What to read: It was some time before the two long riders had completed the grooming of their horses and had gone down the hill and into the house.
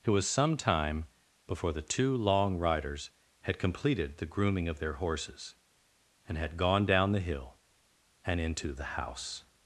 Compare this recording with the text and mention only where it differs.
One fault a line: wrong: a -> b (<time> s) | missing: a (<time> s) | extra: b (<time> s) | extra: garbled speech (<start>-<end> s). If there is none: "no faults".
no faults